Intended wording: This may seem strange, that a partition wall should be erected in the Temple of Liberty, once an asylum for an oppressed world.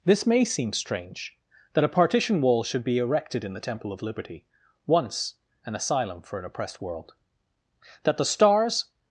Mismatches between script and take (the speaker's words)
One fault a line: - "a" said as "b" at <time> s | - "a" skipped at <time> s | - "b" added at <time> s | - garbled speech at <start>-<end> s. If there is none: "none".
- "That the Stars" added at 8.0 s